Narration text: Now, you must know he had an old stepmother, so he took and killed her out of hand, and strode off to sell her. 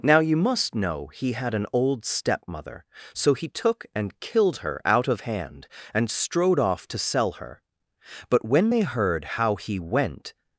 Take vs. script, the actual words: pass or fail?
fail